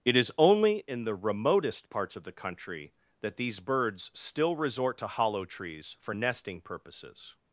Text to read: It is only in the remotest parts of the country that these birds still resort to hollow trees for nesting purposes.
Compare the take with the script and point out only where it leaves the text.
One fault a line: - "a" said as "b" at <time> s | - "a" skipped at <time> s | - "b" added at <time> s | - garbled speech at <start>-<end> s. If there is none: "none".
none